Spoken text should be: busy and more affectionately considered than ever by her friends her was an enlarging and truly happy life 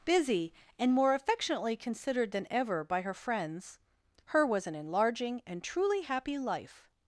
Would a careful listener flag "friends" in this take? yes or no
no